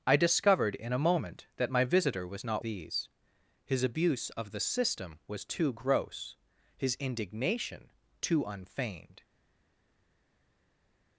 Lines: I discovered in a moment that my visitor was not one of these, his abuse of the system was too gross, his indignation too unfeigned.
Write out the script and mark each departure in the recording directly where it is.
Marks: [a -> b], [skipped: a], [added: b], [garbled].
I discovered in a moment that my visitor was not [skipped: one of] these, his abuse of the system was too gross, his indignation too unfeigned.